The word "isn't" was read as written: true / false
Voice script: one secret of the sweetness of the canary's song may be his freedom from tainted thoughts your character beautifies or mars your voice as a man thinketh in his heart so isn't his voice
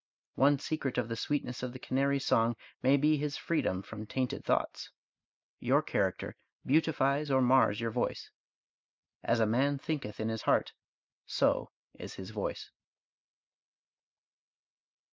false